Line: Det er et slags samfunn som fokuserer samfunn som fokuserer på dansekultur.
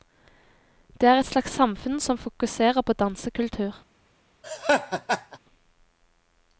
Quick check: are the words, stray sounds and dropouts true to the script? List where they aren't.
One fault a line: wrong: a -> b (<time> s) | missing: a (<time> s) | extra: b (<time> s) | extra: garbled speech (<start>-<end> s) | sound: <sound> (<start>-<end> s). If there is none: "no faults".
missing: samfunn som fokuserer (2.8 s)
sound: laugh (4.4-5.4 s)